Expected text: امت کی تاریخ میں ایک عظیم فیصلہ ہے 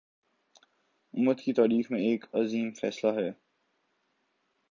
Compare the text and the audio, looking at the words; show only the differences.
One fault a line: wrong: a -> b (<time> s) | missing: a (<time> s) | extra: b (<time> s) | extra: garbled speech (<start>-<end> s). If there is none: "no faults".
no faults